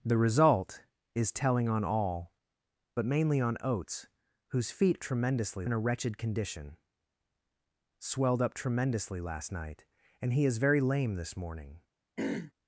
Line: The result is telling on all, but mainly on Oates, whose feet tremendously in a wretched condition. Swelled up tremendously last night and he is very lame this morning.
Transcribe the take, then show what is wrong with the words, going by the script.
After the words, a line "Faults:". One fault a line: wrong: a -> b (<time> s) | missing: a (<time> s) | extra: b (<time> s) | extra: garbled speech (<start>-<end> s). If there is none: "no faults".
The result is telling on all, but mainly on Oates, whose feet tremendously in a wretched condition. Swelled up tremendously last night and he is very lame this morning.
Faults:
no faults